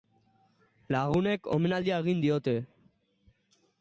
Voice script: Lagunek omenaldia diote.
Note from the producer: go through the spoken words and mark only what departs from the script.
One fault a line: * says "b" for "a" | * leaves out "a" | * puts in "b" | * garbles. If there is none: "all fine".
* puts in "egin"